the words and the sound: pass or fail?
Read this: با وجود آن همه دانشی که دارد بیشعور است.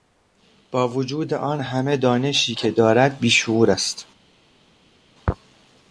pass